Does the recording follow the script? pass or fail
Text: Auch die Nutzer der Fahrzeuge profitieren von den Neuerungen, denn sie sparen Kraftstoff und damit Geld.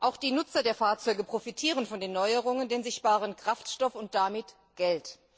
pass